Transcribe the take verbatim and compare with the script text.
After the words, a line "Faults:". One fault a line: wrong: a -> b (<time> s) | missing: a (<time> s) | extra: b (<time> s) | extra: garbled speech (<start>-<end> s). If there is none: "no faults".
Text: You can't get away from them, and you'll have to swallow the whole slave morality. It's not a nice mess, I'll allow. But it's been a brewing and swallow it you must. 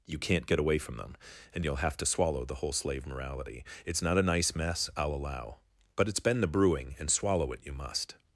You can't get away from them, and you'll have to swallow the whole slave morality. It's not a nice mess, I'll allow. But it's been the brewing and swallow it you must.
Faults:
wrong: a -> the (6.4 s)